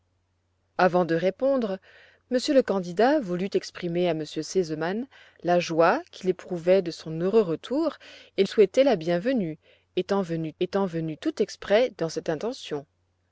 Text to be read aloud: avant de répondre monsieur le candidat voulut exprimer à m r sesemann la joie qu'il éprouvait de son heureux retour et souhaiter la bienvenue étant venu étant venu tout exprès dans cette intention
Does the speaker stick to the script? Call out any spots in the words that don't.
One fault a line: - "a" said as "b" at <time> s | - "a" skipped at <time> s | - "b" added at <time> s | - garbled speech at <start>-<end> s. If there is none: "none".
none